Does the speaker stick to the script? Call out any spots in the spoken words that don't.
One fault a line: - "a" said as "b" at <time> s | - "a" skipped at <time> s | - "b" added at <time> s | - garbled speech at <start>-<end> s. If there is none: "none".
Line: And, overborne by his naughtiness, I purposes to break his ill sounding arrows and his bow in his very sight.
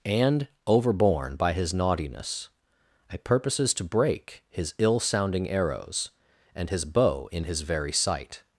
none